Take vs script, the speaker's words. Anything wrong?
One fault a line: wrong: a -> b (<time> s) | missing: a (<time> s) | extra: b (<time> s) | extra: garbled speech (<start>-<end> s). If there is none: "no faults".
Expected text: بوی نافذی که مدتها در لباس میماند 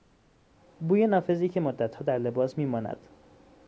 no faults